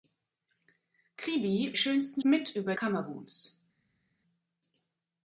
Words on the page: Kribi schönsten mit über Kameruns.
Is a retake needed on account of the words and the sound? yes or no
no